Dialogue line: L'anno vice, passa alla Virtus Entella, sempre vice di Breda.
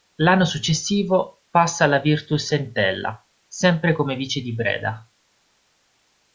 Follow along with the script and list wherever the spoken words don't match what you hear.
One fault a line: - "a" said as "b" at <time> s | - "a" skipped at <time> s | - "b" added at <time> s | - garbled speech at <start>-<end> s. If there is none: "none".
- "vice" said as "successivo" at 0.5 s
- "come" added at 3.9 s